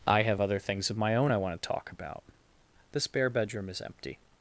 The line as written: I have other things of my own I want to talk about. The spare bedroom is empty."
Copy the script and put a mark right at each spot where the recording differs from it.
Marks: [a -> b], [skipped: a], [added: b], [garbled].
I have other things of my own I want to talk about. The spare bedroom is empty."